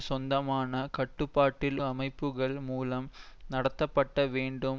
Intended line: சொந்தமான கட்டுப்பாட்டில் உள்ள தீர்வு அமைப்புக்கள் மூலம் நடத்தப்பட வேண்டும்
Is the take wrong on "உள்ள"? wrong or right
wrong